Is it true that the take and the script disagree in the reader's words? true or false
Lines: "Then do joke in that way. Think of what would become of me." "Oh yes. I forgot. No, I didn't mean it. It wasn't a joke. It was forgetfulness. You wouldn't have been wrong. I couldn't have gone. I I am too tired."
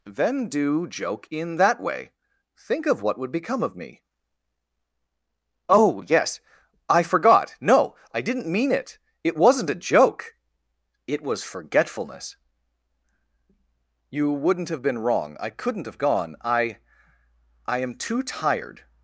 false